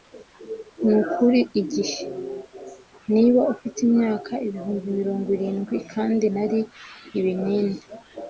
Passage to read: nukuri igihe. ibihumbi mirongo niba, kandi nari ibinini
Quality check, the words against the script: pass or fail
fail